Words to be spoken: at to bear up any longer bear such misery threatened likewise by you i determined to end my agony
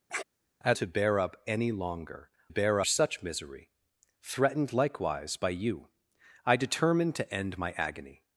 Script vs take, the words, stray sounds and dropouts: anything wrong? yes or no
yes